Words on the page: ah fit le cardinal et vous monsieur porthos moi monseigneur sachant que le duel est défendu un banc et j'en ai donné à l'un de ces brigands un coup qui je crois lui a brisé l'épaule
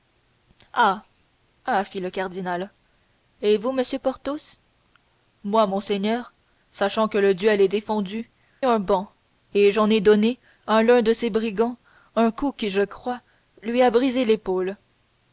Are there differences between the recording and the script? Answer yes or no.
no